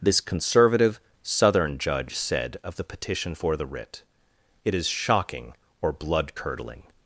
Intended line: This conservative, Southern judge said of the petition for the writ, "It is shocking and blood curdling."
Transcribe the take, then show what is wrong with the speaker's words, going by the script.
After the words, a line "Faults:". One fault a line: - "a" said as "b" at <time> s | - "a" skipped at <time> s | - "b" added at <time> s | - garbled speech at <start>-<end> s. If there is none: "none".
This conservative, Southern judge said of the petition for the writ, "It is shocking or blood curdling."
Faults:
- "and" said as "or" at 5.8 s